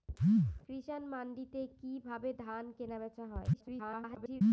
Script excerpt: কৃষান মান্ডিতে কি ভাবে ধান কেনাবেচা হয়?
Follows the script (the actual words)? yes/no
no